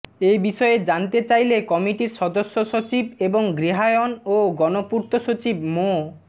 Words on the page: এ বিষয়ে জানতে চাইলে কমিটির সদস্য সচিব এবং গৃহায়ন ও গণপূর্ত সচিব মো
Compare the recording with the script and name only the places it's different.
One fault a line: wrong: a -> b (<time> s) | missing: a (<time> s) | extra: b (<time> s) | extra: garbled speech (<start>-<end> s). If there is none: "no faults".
no faults